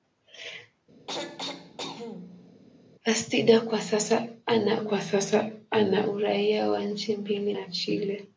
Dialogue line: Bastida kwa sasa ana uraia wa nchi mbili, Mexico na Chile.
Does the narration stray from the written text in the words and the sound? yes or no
yes